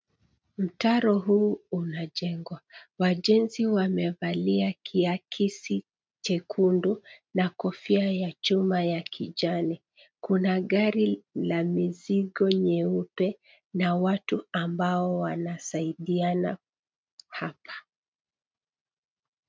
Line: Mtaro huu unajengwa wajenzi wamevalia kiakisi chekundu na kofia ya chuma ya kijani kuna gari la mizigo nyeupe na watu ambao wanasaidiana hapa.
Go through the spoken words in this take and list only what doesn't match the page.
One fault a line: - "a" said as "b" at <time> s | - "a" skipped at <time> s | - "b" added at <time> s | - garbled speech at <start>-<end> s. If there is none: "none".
none